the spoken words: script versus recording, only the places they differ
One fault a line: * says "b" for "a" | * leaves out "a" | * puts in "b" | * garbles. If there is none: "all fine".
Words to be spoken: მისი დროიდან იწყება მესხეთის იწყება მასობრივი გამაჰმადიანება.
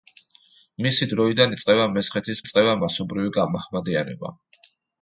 all fine